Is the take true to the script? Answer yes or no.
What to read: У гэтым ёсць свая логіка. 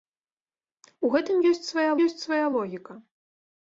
no